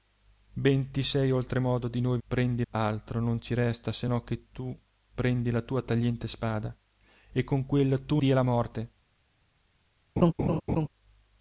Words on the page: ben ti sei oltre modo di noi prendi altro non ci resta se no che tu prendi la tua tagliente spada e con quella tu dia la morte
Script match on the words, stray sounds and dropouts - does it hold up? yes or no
no